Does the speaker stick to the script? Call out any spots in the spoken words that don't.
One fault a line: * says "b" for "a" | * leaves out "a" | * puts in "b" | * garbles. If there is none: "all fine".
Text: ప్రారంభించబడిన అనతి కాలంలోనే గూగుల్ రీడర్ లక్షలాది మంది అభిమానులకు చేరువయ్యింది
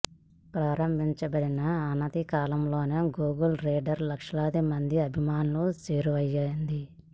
all fine